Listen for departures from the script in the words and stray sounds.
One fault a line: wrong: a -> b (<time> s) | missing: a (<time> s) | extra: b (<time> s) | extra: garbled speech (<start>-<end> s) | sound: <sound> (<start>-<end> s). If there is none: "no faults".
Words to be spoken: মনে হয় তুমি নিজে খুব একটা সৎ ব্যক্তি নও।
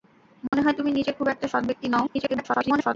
sound: dropout (0.5-0.5 s)
extra: garbled speech (2.1-3.0 s)